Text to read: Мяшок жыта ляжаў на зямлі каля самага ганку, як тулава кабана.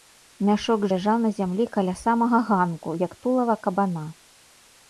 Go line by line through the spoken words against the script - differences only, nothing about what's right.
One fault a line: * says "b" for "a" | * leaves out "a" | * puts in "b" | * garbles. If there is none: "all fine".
* leaves out "жыта"